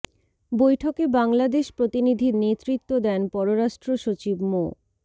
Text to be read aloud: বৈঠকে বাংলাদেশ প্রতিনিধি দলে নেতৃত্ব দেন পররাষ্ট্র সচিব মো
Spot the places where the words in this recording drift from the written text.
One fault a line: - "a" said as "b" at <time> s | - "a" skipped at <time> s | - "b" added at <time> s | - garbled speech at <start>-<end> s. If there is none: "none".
- "দলে" skipped at 2.3 s